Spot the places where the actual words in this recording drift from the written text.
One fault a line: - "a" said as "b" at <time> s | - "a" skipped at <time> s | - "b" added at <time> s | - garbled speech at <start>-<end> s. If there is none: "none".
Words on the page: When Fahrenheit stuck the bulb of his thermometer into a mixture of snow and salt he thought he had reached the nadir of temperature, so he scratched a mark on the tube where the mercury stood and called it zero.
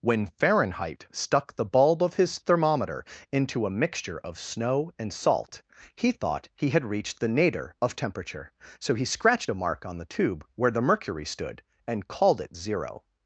none